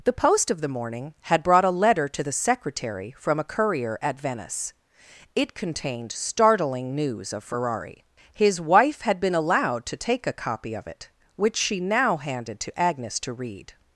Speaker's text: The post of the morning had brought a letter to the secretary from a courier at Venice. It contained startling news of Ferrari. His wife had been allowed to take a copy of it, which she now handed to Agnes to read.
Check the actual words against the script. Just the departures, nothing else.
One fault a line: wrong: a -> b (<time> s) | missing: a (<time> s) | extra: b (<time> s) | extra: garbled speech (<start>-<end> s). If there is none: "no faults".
no faults